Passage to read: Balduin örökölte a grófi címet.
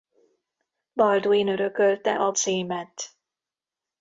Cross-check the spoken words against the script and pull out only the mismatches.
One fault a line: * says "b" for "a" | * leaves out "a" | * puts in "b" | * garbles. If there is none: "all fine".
* leaves out "grófi"